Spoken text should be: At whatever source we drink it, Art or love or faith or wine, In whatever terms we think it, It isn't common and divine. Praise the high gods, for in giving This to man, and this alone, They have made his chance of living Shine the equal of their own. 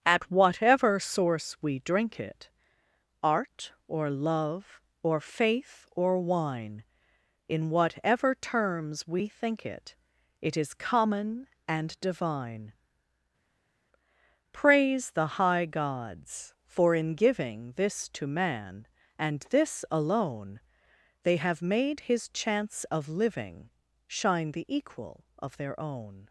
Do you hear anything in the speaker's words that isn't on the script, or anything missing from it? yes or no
yes